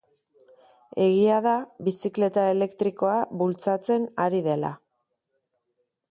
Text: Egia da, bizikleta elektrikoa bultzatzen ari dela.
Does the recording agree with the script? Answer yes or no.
yes